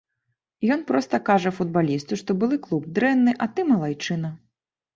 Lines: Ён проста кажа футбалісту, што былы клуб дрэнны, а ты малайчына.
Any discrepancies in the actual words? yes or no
no